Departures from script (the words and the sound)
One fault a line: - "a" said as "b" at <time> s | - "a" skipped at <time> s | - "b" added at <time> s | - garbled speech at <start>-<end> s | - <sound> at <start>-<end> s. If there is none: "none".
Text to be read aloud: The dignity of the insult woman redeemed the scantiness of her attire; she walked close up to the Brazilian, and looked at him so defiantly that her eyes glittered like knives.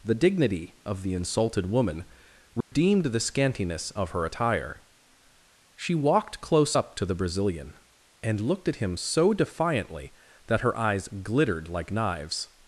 - "insult" said as "insulted" at 1.1 s
- dropout at 2.6-2.7 s